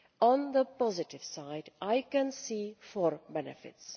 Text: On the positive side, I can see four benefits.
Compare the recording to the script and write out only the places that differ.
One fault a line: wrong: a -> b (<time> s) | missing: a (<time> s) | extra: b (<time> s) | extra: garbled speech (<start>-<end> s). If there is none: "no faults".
no faults